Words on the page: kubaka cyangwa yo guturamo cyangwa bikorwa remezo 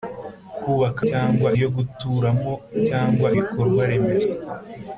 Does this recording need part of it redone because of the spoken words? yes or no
no